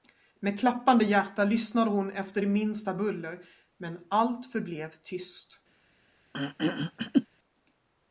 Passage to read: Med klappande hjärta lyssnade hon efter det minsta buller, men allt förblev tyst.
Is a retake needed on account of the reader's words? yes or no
no